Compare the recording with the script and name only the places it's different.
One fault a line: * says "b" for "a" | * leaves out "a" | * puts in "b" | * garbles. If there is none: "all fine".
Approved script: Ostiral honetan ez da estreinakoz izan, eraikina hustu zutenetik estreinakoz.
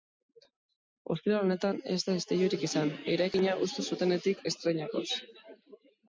* says "istilurik" for "estreinakoz"